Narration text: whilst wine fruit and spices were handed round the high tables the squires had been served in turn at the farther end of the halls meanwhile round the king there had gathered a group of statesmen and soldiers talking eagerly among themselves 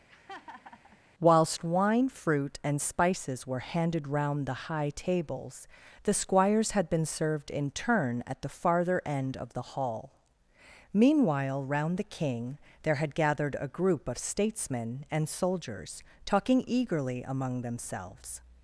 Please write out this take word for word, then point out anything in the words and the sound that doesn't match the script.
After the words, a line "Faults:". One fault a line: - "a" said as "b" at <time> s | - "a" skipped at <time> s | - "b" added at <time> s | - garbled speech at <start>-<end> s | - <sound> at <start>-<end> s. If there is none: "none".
whilst wine fruit and spices were handed round the high tables the squires had been served in turn at the farther end of the hall meanwhile round the king there had gathered a group of statesmen and soldiers talking eagerly among themselves
Faults:
- laugh at 0.1-1.0 s
- "halls" said as "hall" at 9.7 s